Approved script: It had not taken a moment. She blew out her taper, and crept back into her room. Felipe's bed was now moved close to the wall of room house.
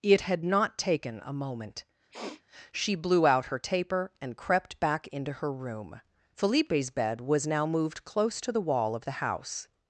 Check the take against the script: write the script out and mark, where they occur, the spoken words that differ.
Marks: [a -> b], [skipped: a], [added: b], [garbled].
It had not taken a moment. She blew out her taper, and crept back into her room. Felipe's bed was now moved close to the wall of [room -> the] house.